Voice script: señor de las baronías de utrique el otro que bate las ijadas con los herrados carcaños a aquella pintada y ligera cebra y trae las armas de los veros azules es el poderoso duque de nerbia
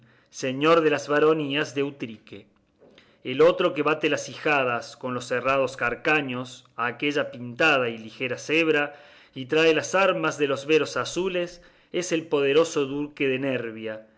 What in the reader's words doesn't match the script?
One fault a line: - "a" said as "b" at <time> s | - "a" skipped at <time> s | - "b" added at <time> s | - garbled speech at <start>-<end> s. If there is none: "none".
none